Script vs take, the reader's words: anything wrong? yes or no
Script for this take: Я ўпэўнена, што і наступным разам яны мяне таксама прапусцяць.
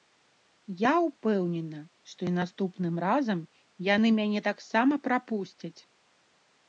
no